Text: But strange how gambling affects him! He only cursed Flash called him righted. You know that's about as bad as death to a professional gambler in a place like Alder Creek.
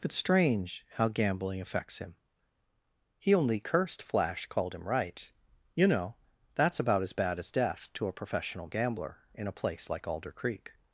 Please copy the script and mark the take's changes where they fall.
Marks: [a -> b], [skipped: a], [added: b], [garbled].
But strange how gambling affects him! He only cursed Flash called him [righted. -> right] You know that's about as bad as death to a professional gambler in a place like Alder Creek.